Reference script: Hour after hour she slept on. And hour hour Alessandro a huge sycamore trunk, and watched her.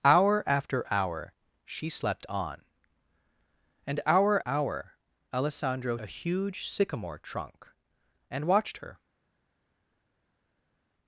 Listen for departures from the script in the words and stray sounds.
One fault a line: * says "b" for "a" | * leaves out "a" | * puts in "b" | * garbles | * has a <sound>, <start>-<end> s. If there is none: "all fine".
all fine